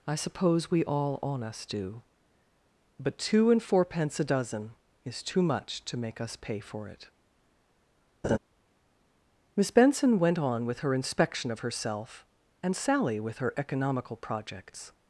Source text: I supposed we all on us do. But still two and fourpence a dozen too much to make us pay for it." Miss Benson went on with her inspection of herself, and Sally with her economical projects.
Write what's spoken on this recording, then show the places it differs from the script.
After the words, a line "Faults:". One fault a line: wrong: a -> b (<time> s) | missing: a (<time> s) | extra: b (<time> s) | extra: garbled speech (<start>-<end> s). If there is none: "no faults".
I suppose we all on us do. But two and fourpence a dozen is too much to make us pay for it." Miss Benson went on with her inspection of herself, and Sally with her economical projects.
Faults:
wrong: supposed -> suppose (0.1 s)
missing: still (3.2 s)
extra: is (5.0 s)